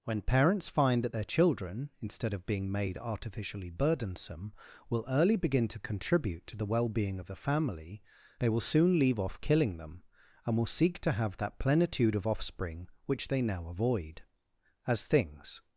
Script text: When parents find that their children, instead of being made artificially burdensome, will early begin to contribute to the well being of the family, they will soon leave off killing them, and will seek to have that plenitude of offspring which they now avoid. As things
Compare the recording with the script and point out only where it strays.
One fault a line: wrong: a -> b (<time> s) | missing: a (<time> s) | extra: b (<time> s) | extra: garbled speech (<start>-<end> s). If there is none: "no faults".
no faults